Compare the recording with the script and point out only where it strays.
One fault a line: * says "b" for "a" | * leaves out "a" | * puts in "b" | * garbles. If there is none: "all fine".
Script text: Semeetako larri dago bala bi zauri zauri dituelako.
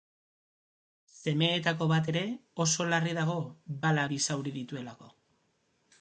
* puts in "bat ere oso"
* leaves out "zauri"